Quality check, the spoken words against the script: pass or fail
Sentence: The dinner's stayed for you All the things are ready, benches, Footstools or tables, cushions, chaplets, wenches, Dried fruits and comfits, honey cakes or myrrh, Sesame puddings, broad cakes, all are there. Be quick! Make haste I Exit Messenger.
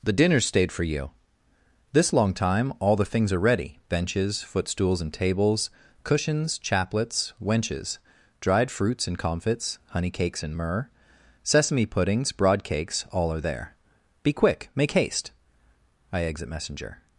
fail